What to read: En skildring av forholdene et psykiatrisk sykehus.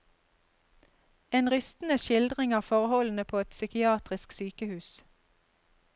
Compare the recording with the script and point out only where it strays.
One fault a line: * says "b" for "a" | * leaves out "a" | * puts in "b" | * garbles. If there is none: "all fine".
* puts in "rystende"
* puts in "på"